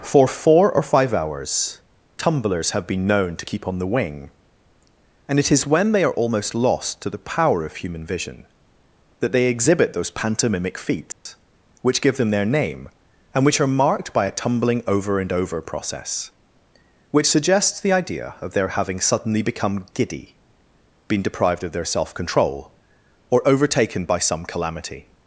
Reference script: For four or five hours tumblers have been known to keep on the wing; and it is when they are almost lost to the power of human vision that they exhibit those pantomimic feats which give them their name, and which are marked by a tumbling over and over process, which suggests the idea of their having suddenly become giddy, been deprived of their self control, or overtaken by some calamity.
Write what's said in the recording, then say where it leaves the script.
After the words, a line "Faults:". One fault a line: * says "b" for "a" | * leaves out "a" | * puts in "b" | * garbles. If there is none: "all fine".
For four or five hours tumblers have been known to keep on the wing; and it is when they are almost lost to the power of human vision that they exhibit those pantomimic feats which give them their name, and which are marked by a tumbling over and over process, which suggests the idea of their having suddenly become giddy, been deprived of their self control, or overtaken by some calamity.
Faults:
all fine